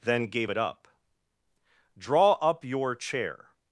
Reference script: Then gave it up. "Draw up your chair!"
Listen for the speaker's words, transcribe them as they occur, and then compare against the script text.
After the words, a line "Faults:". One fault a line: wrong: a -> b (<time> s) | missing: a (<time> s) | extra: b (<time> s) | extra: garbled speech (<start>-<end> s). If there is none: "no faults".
Then gave it up. "Draw up your chair!"
Faults:
no faults